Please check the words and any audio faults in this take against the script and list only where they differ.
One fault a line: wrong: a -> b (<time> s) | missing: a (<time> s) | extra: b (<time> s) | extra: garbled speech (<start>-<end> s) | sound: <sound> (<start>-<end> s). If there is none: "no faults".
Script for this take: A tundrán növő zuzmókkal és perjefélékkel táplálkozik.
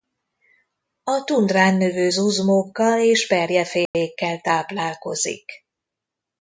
sound: dropout (3.9-3.9 s)